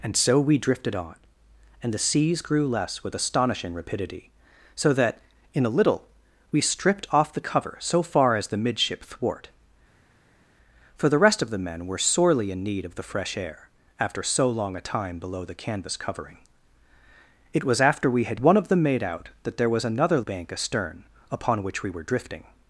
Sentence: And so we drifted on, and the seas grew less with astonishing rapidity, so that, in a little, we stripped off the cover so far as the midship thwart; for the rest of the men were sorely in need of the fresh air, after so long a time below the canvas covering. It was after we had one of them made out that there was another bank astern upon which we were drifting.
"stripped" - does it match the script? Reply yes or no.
yes